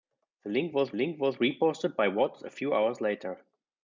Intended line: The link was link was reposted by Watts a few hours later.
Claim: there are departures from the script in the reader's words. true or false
false